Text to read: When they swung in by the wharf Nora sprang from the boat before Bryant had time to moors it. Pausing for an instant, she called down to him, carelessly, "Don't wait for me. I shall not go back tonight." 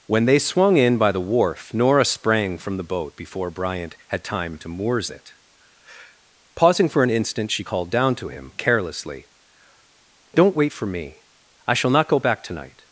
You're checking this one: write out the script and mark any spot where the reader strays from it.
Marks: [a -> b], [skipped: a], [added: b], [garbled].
When they swung in by the wharf Nora sprang from the boat before Bryant had time to moors it. Pausing for an instant, she called down to him, carelessly, "Don't wait for me. I shall not go back tonight."